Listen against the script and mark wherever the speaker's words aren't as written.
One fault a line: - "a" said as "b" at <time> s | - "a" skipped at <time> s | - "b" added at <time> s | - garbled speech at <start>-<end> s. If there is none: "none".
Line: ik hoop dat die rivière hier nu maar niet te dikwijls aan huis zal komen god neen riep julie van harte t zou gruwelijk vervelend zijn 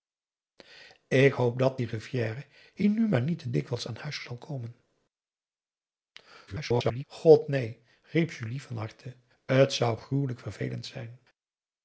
- garbled speech at 6.5-7.0 s